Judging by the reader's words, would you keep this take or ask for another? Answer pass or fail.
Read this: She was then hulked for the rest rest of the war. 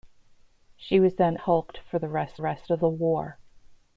pass